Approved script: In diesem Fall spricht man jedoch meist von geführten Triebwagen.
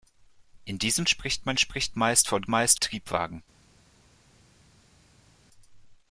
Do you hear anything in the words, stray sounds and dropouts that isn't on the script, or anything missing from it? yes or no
yes